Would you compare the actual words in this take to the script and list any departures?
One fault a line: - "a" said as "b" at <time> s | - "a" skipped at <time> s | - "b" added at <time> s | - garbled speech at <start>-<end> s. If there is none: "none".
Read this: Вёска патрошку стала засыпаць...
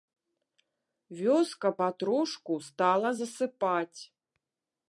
none